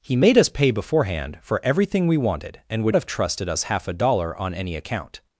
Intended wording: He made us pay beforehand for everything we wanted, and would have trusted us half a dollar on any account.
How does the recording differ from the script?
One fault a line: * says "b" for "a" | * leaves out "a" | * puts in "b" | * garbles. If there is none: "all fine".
all fine